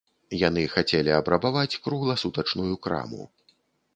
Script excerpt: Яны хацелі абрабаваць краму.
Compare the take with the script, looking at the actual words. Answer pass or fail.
fail